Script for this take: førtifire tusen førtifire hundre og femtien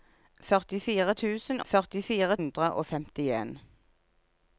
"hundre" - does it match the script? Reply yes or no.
yes